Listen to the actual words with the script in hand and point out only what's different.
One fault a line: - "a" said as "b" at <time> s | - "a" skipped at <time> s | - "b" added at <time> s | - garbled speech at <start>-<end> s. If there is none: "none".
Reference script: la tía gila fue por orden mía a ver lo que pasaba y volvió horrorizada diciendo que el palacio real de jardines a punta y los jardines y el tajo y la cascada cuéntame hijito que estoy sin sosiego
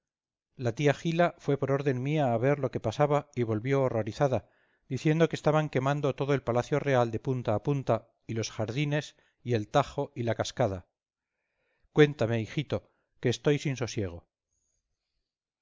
- "estaban quemando todo" added at 5.3 s
- "jardines" said as "punta" at 7.2 s